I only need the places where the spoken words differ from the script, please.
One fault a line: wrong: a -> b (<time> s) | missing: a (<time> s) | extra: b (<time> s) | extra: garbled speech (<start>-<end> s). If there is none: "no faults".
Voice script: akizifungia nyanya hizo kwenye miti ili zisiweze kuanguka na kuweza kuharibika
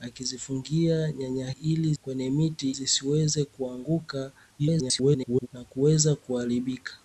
wrong: hizo -> ili (1.5 s)
missing: ili (2.7 s)
extra: garbled speech (4.6-5.5 s)